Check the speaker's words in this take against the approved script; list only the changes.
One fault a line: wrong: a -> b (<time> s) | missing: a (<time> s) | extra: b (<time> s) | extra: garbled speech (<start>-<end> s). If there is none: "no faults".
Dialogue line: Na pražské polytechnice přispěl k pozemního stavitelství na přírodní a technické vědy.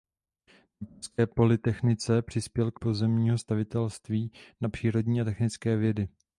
no faults